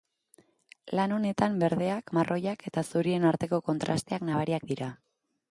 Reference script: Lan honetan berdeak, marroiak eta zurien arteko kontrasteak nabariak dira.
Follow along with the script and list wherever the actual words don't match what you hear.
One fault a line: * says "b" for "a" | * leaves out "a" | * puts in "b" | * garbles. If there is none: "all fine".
all fine